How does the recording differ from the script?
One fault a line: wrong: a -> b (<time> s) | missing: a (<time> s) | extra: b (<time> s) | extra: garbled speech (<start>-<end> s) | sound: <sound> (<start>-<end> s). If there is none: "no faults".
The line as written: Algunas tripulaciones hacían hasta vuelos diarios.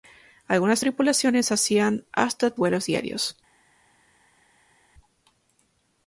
no faults